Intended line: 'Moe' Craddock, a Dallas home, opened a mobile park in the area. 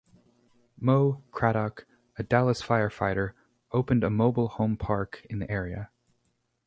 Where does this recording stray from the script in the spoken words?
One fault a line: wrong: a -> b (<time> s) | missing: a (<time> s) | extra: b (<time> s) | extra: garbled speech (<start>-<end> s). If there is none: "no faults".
wrong: home -> firefighter (2.6 s)
extra: home (4.5 s)